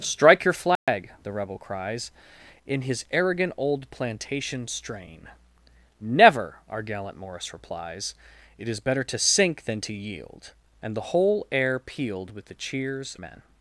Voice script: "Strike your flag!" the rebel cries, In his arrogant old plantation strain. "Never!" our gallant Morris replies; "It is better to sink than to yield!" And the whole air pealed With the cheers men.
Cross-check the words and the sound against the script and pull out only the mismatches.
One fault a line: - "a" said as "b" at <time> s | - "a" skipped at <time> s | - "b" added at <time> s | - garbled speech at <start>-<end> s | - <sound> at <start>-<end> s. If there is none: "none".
- dropout at 0.8-0.9 s